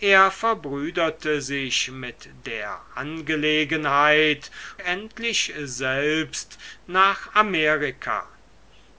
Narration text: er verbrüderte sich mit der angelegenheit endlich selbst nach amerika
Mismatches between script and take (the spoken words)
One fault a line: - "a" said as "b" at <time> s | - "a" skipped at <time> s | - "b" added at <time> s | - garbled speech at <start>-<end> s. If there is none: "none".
none